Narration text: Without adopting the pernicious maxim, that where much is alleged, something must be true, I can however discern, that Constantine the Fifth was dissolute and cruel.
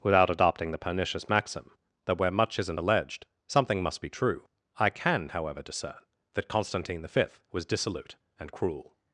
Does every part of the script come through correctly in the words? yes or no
no